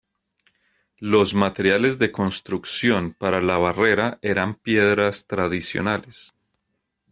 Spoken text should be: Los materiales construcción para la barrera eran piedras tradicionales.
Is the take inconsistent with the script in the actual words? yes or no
yes